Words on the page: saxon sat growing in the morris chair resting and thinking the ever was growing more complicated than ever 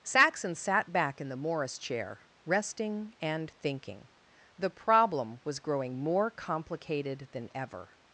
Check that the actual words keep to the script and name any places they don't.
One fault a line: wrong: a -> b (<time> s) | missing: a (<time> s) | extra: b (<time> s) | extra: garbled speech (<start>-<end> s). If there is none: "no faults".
wrong: growing -> back (0.9 s)
wrong: ever -> problem (4.7 s)